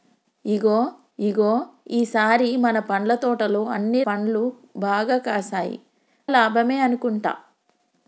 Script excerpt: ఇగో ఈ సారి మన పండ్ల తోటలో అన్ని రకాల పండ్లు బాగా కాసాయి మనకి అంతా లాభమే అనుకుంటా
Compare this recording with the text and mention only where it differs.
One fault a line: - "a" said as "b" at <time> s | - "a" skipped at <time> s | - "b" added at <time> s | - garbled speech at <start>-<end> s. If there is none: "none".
- "ఇగో" added at 1.2 s
- "రకాల" skipped at 4.0 s
- "మనకి అంతా" skipped at 5.8 s